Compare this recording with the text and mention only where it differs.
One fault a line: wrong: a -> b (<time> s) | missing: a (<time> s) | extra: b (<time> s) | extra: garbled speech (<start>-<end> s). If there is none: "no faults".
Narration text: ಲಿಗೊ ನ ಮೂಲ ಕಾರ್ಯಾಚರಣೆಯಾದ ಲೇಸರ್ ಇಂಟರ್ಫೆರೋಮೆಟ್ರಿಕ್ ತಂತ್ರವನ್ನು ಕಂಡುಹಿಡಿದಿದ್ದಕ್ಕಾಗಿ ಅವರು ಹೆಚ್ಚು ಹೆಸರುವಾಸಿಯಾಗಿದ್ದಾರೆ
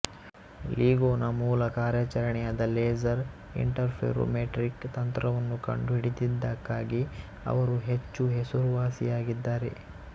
no faults